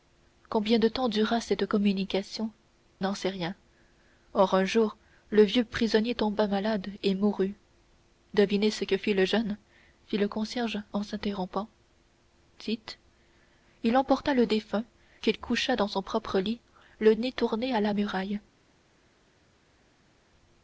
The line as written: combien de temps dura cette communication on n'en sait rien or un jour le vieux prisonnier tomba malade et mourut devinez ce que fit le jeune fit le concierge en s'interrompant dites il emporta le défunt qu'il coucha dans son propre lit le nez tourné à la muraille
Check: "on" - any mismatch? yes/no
yes